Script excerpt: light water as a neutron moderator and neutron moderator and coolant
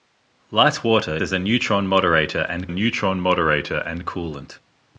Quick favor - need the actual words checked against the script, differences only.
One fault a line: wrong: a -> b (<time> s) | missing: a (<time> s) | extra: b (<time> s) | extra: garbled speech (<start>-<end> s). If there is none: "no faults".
no faults